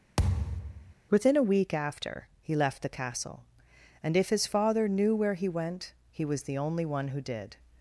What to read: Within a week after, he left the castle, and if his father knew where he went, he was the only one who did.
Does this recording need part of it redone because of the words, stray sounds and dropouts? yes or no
yes